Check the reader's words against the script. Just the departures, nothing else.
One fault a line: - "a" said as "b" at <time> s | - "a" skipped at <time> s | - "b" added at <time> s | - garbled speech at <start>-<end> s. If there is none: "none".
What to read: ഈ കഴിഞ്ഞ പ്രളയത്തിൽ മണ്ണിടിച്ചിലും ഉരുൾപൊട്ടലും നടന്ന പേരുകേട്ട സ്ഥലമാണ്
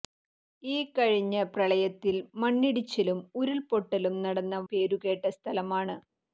none